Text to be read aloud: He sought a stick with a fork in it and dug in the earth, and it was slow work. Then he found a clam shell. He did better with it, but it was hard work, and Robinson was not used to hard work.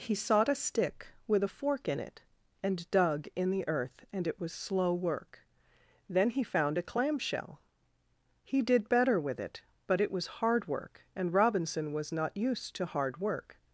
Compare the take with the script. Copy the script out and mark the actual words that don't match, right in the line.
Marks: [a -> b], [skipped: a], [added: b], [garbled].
He sought a stick with a fork in it and dug in the earth, and it was slow work. Then he found a clam shell. He did better with it, but it was hard work, and Robinson was not used to hard work.